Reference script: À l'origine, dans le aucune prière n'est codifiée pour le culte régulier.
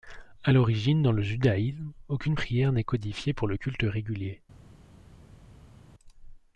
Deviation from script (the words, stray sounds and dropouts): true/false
true